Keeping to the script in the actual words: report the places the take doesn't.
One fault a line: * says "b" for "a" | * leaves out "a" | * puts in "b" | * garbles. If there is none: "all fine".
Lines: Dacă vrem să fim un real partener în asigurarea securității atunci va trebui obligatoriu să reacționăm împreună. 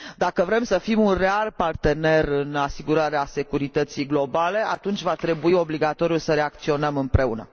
* puts in "globale"